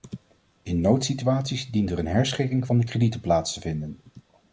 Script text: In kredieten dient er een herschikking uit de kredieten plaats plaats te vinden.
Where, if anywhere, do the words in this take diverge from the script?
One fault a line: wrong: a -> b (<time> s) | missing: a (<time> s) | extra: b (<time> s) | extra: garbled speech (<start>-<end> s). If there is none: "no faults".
wrong: kredieten -> noodsituaties (0.8 s)
wrong: uit -> van (2.6 s)
missing: plaats (3.5 s)